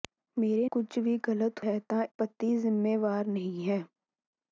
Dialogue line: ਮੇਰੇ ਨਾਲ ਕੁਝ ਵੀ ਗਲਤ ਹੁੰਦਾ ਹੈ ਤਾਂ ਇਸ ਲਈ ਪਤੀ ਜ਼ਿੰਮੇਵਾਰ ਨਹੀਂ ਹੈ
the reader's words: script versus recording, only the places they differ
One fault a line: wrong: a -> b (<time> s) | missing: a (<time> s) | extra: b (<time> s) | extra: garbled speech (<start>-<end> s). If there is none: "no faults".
missing: ਨਾਲ (0.7 s)
missing: ਹੁੰਦਾ (1.7 s)
missing: ਇਸ ਲਈ (2.0 s)